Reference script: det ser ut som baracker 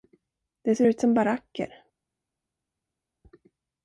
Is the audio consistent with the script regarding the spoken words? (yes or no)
yes